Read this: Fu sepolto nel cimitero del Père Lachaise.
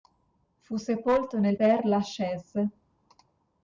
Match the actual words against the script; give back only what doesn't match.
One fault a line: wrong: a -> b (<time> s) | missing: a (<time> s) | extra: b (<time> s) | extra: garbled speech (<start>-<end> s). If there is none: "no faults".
missing: cimitero del (1.6 s)